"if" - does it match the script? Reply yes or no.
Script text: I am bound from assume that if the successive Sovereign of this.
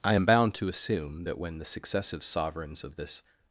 no